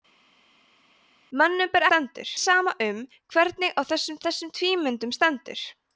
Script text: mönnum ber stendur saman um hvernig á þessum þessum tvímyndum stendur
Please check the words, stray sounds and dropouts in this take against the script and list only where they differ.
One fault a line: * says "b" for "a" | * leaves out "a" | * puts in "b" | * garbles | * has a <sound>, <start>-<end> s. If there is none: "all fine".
all fine